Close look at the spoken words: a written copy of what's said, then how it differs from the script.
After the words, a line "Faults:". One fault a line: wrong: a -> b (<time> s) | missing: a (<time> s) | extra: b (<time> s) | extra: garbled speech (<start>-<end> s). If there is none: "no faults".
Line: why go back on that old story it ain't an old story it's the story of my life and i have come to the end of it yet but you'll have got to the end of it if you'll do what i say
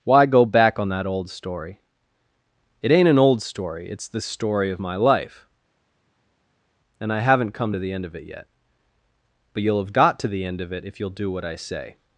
why go back on that old story it ain't an old story it's the story of my life and i haven't come to the end of it yet but you'll have got to the end of it if you'll do what i say
Faults:
wrong: have -> haven't (7.2 s)